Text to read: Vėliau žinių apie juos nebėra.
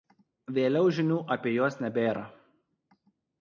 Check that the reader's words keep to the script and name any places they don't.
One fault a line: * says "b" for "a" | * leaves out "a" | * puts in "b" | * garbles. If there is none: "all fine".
all fine